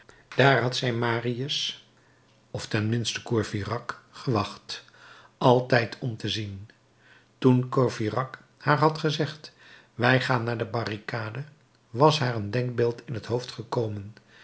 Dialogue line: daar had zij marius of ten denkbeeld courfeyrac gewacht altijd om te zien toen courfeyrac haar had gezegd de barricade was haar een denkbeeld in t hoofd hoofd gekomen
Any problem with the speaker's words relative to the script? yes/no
yes